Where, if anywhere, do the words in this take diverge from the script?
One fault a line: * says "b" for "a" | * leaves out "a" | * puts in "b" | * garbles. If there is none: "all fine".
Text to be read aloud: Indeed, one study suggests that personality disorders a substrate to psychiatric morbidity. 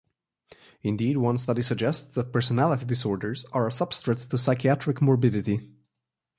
* puts in "are"